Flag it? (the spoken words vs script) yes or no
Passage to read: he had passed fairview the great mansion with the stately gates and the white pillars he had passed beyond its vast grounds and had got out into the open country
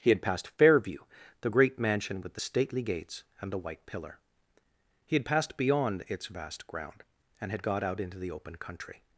yes